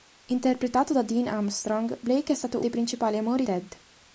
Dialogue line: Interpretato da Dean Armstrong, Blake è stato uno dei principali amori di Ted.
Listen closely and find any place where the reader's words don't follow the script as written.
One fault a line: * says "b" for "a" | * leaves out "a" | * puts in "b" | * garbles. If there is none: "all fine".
* leaves out "uno"
* leaves out "di"